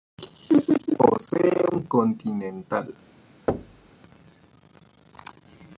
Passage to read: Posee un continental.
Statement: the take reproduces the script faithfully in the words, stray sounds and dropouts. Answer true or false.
false